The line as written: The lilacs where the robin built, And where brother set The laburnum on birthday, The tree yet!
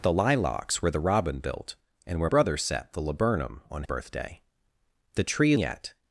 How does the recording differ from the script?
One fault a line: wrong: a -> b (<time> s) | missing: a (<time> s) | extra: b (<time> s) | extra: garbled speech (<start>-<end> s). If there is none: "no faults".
no faults